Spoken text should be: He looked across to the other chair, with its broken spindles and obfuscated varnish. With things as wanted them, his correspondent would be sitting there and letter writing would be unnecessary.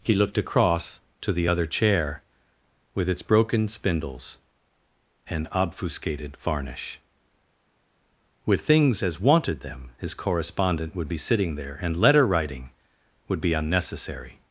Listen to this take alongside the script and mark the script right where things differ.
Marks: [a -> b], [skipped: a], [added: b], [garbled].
He looked across to the other chair, with its broken spindles and obfuscated varnish. With things as wanted them, his correspondent would be sitting there and letter writing would be unnecessary.